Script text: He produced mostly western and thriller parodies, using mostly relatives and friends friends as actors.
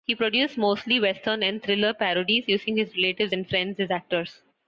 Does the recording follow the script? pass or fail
fail